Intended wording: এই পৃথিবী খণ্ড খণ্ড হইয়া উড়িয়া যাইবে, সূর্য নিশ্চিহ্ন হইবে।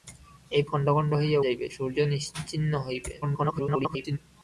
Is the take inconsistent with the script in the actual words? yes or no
yes